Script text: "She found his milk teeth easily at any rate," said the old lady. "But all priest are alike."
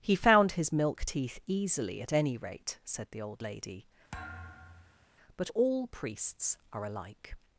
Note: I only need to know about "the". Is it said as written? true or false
true